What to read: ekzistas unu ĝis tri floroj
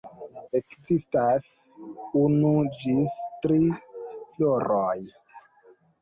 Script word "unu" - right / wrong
right